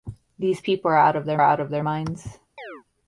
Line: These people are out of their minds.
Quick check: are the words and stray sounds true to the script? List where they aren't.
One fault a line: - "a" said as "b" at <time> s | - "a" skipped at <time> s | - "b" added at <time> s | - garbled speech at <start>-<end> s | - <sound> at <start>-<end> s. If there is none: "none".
- "out of their" added at 1.4 s
- chirp at 2.6-2.8 s